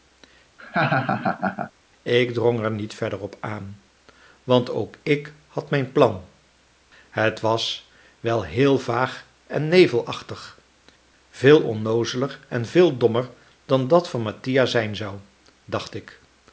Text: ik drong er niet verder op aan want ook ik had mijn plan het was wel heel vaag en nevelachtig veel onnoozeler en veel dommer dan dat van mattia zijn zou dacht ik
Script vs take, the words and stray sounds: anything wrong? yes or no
yes